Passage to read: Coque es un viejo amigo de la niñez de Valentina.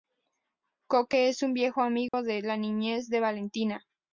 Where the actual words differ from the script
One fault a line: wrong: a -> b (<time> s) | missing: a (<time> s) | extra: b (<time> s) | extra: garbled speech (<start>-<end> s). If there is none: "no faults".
no faults